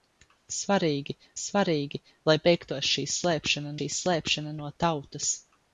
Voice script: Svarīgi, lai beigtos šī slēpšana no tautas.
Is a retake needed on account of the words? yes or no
yes